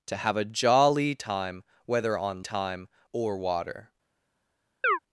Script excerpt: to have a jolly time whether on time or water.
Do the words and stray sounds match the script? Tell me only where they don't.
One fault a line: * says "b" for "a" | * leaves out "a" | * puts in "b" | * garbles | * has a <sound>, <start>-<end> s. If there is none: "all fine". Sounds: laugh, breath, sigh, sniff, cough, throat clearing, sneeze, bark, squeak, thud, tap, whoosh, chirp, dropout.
* has a chirp, 4.8-5.0 s